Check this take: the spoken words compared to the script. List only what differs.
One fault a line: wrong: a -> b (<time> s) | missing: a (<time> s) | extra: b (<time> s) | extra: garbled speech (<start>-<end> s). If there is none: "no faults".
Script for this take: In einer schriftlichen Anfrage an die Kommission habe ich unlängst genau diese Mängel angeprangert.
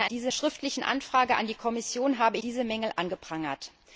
wrong: einer -> diese (0.0 s)
missing: ich unlängst genau (2.4 s)